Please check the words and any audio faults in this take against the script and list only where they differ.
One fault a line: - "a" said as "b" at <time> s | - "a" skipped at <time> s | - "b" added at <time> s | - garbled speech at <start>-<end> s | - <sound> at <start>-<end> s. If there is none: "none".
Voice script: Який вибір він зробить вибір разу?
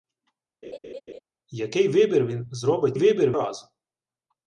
- laugh at 0.6-1.2 s